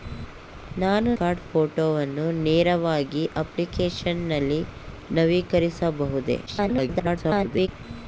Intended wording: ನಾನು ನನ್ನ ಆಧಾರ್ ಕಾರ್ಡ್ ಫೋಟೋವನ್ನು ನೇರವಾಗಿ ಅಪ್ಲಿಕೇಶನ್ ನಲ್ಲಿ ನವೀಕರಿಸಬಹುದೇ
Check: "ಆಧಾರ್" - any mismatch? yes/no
yes